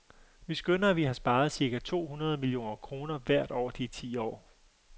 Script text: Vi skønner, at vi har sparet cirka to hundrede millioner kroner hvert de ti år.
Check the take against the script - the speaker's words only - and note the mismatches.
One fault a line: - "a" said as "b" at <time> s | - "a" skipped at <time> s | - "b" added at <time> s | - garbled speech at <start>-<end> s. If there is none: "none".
- "år" added at 3.5 s